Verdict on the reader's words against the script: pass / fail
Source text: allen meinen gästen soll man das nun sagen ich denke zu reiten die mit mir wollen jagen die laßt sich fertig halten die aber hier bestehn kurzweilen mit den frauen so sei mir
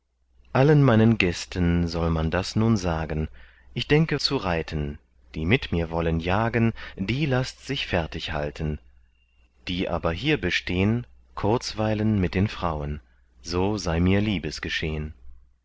pass